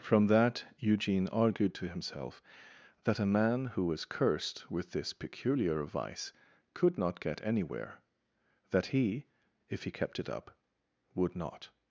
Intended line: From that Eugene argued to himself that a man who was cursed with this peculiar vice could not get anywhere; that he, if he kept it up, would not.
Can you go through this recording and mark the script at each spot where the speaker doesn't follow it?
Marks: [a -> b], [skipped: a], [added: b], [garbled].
From that Eugene argued to himself that a man who was cursed with this peculiar vice could not get anywhere; that he, if he kept it up, would not.